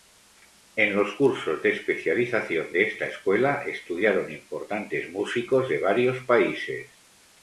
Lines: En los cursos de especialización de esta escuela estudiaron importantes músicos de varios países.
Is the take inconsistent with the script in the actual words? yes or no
no